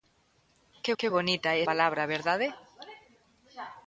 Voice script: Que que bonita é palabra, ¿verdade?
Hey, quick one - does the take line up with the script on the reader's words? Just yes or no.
yes